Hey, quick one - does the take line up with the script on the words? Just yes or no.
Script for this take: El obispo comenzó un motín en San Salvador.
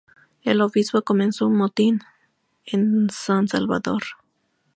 yes